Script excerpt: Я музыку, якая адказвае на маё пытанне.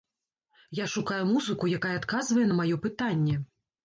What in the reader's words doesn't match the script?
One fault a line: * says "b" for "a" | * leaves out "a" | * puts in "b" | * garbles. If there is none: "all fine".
* puts in "шукаю"